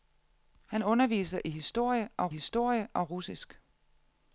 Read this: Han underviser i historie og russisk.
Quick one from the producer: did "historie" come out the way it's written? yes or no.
yes